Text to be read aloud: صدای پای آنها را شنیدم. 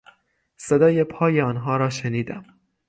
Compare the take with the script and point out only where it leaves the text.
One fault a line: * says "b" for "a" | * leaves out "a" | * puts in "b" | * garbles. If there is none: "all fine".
all fine